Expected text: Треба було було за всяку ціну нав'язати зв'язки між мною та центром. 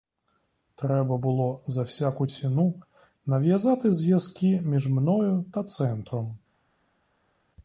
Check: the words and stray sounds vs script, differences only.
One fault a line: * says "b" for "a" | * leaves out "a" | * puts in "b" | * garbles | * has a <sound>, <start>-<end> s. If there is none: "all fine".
* leaves out "було"